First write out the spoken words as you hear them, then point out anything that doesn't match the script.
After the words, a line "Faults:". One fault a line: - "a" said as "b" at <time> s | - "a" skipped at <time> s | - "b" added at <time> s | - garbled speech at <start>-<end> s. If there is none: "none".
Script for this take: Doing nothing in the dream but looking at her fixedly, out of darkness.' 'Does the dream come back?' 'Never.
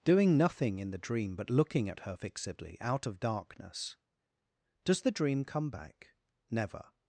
Doing nothing in the dream but looking at her fixedly, out of darkness.' 'Does the dream come back?' 'Never.
Faults:
none